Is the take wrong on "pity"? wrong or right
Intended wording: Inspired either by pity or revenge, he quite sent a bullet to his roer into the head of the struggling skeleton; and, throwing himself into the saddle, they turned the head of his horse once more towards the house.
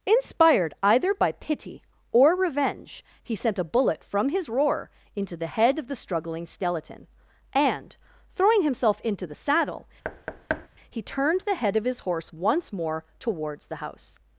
right